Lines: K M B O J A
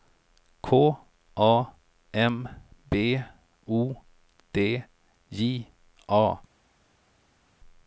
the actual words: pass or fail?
fail